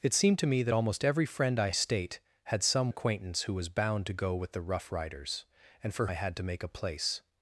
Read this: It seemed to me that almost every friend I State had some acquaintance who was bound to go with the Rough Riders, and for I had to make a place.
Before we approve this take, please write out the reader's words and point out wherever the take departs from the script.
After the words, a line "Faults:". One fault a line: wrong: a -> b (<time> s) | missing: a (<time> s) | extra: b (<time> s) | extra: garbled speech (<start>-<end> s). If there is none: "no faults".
It seemed to me that almost every friend I State had some acquaintance who was bound to go with the Rough Riders, and for I had to make a place.
Faults:
no faults